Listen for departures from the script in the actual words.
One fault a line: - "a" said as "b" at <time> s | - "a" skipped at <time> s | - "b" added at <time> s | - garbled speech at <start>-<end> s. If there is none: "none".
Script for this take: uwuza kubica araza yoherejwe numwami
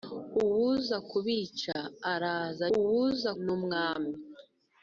- "yoherejwe" said as "uwuza" at 2.8 s